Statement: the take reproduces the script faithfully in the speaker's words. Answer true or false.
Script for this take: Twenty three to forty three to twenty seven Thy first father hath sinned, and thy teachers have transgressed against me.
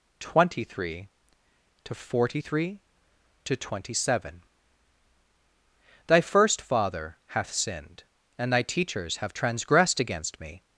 true